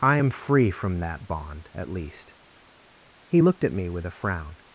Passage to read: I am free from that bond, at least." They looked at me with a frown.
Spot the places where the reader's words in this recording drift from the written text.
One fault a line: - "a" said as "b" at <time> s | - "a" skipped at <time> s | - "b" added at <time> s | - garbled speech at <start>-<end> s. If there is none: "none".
- "They" said as "He" at 3.2 s